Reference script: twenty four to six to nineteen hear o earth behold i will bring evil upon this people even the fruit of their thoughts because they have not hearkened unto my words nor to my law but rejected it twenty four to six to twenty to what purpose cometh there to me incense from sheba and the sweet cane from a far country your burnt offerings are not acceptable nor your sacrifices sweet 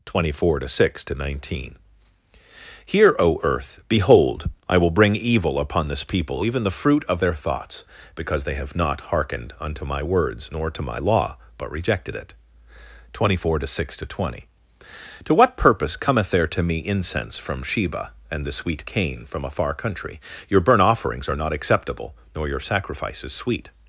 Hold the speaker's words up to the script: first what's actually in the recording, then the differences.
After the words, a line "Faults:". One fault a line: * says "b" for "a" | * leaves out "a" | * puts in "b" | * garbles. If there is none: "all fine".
twenty four to six to nineteen hear o earth behold i will bring evil upon this people even the fruit of their thoughts because they have not hearkened unto my words nor to my law but rejected it twenty four to six to twenty to what purpose cometh there to me incense from sheba and the sweet cane from a far country your burnt offerings are not acceptable nor your sacrifices sweet
Faults:
all fine